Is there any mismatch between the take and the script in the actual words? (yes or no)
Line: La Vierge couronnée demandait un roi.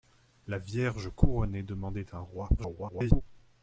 yes